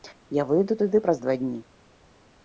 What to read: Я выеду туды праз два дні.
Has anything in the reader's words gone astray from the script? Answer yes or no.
no